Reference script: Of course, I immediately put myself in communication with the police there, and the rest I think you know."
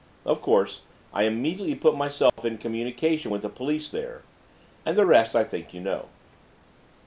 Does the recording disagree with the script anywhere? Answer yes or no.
no